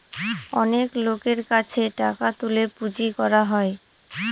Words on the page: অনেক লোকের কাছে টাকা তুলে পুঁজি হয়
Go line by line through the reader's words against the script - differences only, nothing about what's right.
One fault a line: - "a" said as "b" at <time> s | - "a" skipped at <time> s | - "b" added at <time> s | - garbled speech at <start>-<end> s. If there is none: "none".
- "করা" added at 3.2 s